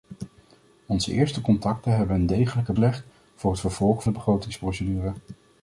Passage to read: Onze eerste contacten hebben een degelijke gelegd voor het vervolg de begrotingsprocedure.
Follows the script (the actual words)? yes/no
yes